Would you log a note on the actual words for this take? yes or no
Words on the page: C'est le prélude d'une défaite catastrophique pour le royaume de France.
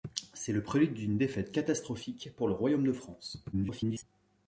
yes